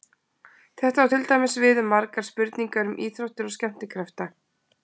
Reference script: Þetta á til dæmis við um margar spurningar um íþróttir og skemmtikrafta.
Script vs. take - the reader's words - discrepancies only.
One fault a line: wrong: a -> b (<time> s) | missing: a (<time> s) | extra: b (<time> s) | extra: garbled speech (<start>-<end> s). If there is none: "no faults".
no faults